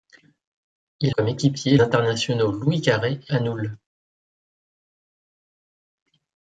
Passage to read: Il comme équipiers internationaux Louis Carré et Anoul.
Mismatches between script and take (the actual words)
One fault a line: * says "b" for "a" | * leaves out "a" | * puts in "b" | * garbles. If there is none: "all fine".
all fine